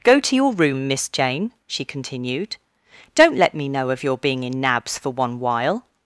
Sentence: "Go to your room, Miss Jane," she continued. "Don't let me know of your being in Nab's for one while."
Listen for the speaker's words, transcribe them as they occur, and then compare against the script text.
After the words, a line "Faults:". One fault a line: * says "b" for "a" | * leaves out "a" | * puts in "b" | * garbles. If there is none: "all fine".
"Go to your room, Miss Jane," she continued. "Don't let me know of your being in Nab's for one while."
Faults:
all fine